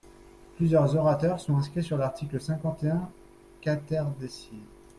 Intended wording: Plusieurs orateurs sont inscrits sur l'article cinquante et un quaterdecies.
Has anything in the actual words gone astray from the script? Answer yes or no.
no